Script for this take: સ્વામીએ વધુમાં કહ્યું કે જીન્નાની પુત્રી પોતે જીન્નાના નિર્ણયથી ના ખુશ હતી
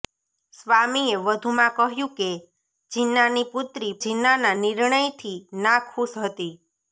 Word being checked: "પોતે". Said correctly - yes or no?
no